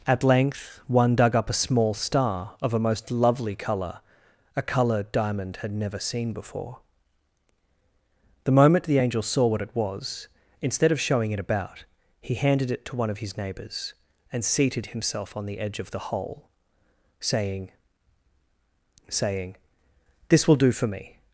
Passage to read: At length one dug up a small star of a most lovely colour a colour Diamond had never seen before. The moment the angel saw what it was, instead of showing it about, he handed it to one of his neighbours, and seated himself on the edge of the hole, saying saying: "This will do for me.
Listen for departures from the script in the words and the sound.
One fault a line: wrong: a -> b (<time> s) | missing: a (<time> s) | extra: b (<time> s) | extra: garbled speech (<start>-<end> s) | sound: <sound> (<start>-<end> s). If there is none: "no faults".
no faults